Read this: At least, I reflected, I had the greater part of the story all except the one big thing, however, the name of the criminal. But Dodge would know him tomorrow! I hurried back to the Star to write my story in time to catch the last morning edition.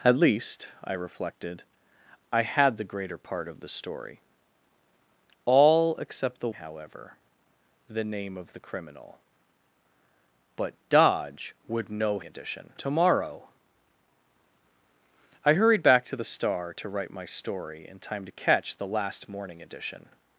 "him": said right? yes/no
no